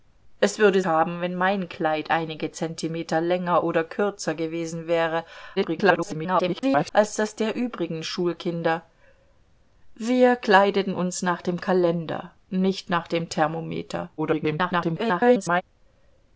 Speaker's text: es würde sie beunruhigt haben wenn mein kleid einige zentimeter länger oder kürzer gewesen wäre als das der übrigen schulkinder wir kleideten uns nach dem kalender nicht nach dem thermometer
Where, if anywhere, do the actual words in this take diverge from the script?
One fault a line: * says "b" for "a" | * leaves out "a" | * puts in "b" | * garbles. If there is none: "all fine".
* leaves out "sie beunruhigt"
* garbles
* garbles